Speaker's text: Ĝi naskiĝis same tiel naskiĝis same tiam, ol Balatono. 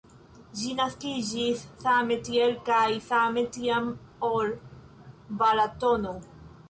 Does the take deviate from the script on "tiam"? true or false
false